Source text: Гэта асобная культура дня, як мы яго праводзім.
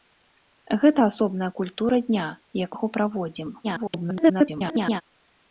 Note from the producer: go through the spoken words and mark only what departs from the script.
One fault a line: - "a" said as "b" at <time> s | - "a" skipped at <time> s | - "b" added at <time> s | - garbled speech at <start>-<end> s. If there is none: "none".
- "мы" skipped at 2.7 s
- garbled speech at 3.6-5.0 s